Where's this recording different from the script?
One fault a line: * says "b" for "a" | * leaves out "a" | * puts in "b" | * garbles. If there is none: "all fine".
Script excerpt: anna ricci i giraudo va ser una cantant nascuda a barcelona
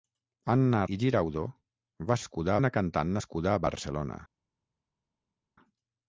* leaves out "ricci"
* says "nascuda" for "ser"